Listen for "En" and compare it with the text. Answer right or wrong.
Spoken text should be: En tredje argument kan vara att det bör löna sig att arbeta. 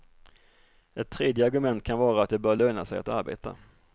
wrong